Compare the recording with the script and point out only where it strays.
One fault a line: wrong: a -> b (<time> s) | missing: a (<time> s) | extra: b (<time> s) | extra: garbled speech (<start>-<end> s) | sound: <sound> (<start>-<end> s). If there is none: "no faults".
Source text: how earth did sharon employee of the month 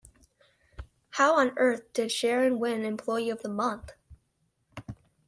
extra: on (1.4 s)
extra: win (2.6 s)